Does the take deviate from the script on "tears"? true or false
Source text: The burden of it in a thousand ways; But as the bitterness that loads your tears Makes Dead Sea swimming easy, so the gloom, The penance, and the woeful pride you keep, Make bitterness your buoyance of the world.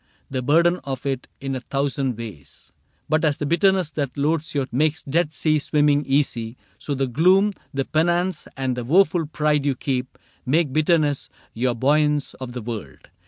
true